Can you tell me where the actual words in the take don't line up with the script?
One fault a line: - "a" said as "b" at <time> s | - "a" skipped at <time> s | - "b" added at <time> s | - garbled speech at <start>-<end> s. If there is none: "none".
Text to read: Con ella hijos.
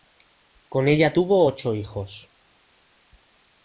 - "tuvo ocho" added at 1.1 s